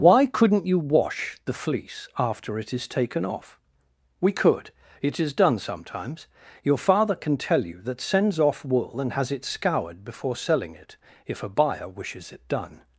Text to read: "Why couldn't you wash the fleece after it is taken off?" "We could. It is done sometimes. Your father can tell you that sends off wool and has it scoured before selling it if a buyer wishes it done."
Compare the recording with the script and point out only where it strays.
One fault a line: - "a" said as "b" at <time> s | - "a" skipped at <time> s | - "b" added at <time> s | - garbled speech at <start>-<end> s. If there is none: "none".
none